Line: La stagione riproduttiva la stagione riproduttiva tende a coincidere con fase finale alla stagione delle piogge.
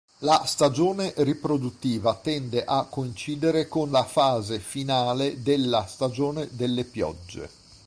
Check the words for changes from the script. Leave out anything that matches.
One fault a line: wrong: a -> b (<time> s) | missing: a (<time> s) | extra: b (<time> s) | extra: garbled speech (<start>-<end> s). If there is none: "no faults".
missing: la stagione riproduttiva (2.1 s)
extra: la (3.9 s)
wrong: alla -> della (5.4 s)